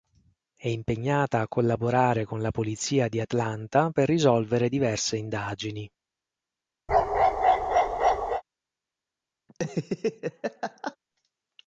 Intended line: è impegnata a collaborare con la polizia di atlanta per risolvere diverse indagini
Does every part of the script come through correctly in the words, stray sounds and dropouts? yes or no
no